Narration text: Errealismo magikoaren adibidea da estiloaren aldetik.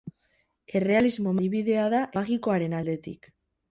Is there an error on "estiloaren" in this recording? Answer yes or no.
yes